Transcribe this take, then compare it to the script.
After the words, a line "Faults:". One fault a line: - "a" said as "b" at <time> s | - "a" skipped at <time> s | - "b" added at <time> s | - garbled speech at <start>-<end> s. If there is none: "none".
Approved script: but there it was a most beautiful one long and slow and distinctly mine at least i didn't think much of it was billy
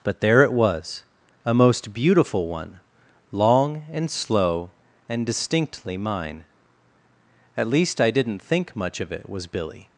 but there it was a most beautiful one long and slow and distinctly mine at least i didn't think much of it was billy
Faults:
none